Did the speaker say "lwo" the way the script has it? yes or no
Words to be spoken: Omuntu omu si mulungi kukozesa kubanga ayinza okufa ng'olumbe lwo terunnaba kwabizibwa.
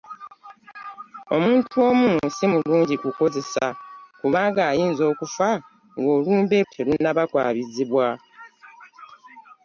no